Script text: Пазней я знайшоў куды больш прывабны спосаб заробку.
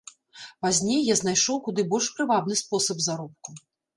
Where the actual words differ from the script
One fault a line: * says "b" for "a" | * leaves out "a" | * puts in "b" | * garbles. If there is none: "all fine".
all fine